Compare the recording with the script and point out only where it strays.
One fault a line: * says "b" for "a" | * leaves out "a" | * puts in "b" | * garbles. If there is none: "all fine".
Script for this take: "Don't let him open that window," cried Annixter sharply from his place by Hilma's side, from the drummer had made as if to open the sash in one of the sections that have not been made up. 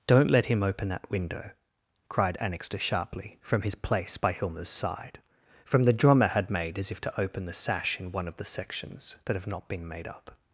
all fine